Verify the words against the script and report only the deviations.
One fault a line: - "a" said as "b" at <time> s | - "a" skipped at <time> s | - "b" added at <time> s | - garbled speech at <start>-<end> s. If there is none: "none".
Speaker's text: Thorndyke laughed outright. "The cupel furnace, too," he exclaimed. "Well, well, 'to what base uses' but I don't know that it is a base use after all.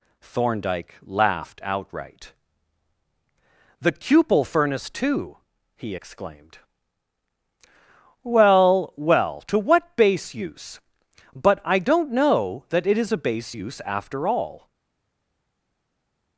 - "uses" said as "use" at 10.3 s